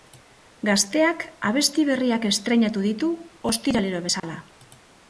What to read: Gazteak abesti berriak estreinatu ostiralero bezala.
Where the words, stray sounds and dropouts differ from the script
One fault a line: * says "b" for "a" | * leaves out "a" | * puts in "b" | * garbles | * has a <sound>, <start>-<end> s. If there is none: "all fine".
* puts in "ditu"
* has a dropout, 4.2-4.2 s